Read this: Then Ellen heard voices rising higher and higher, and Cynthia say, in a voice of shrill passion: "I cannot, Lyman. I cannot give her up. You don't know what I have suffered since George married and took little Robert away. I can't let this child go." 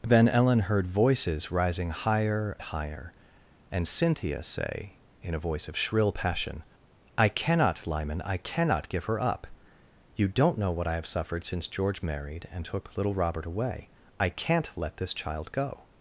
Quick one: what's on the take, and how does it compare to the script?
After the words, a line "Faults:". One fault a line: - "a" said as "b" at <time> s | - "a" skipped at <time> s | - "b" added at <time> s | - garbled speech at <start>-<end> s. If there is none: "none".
Then Ellen heard voices rising higher higher, and Cynthia say, in a voice of shrill passion: "I cannot, Lyman. I cannot give her up. You don't know what I have suffered since George married and took little Robert away. I can't let this child go."
Faults:
- "and" skipped at 2.6 s